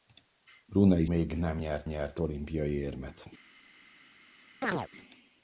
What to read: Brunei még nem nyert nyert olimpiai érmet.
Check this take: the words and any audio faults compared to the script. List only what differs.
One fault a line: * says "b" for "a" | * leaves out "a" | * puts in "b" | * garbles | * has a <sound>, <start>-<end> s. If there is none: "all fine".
* has a chirp, 4.6-4.9 s